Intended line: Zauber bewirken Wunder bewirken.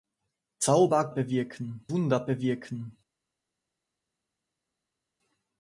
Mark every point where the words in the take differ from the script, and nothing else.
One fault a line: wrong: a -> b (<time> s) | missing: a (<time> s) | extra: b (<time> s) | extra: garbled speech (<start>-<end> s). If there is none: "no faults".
no faults